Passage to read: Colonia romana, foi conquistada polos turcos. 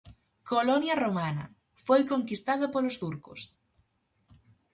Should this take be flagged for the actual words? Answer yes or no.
no